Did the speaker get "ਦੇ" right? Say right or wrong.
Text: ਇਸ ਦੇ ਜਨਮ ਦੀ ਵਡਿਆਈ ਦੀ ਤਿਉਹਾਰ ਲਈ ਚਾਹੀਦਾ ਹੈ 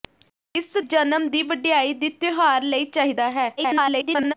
wrong